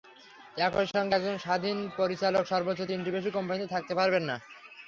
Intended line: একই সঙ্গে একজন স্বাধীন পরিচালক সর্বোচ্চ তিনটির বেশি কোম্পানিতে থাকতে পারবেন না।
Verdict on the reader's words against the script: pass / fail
pass